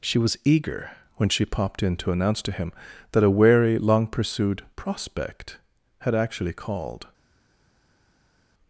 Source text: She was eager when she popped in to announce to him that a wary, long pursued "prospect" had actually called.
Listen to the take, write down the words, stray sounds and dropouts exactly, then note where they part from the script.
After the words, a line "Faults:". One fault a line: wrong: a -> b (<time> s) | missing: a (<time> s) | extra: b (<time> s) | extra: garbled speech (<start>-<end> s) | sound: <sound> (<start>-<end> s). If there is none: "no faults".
She was eager when she popped in to announce to him that a wary, long pursued "prospect" had actually called.
Faults:
no faults